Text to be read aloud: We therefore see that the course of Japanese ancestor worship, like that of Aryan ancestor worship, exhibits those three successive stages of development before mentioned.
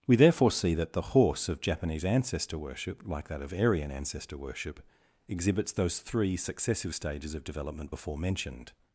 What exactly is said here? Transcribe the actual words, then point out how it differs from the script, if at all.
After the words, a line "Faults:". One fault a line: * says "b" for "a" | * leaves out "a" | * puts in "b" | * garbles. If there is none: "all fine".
We therefore see that the horse of Japanese ancestor worship, like that of Aryan ancestor worship, exhibits those three successive stages of development before mentioned.
Faults:
* says "horse" for "course"